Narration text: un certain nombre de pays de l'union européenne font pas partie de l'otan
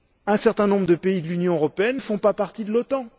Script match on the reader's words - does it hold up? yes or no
yes